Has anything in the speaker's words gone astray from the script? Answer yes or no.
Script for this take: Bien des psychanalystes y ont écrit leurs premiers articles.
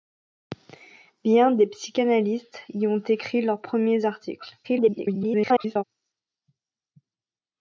yes